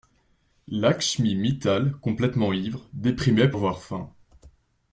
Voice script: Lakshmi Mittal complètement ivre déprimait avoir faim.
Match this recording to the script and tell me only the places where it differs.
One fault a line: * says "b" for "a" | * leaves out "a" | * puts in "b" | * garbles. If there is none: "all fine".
all fine